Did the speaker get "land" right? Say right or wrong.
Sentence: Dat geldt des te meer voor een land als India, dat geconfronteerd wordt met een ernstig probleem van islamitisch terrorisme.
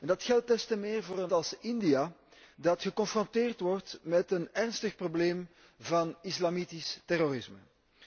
wrong